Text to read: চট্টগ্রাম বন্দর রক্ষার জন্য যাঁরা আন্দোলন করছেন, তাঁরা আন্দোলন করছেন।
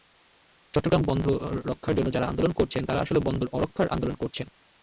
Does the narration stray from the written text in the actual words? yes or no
yes